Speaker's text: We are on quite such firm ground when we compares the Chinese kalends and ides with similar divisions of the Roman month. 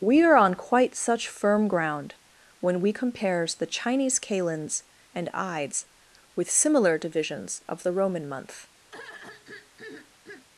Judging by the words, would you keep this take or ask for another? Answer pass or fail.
pass